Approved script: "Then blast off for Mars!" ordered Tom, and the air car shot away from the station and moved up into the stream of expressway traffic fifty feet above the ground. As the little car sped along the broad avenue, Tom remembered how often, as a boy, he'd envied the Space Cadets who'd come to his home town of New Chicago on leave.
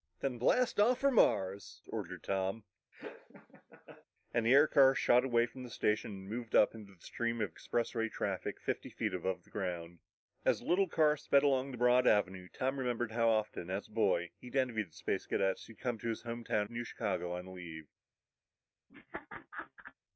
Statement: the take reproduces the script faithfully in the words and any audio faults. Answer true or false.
false